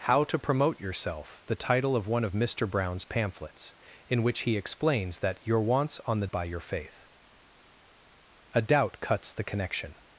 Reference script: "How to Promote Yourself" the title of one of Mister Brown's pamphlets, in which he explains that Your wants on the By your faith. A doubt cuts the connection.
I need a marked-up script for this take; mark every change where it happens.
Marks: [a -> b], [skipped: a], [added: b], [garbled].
"How to Promote Yourself" the title of one of Mister Brown's pamphlets, in which he explains that Your wants on the By your faith. A doubt cuts the connection.